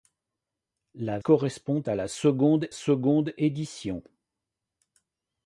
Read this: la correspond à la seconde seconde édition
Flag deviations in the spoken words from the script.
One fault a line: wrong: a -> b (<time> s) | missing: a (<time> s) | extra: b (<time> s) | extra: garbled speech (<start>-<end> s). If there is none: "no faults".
no faults